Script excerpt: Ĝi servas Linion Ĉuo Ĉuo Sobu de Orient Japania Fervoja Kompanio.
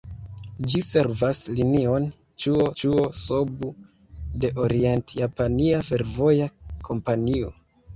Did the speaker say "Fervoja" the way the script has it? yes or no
yes